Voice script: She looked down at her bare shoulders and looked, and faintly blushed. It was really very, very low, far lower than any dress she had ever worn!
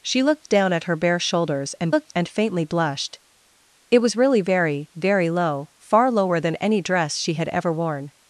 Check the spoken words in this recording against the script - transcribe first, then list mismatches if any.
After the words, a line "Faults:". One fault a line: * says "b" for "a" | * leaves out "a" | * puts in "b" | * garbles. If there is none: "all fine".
She looked down at her bare shoulders and looked, and faintly blushed. It was really very, very low, far lower than any dress she had ever worn!
Faults:
all fine